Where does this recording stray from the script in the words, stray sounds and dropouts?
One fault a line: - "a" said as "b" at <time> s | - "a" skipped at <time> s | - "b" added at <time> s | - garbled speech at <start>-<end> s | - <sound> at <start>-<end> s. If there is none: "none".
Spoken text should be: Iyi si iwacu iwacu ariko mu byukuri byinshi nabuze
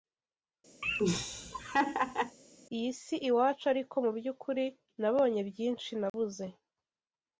- laugh at 0.8-2.4 s
- "iwacu" skipped at 3.6 s
- "nabonye" added at 5.0 s
- dropout at 6.1-6.1 s